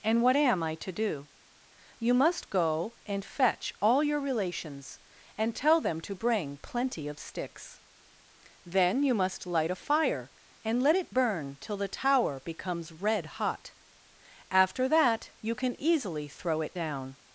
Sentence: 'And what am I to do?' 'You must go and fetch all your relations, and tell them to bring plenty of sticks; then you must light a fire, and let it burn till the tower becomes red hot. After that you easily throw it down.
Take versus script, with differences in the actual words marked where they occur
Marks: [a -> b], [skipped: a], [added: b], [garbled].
'And what am I to do?' 'You must go and fetch all your relations, and tell them to bring plenty of sticks; then you must light a fire, and let it burn till the tower becomes red hot. After that you [added: can] easily throw it down.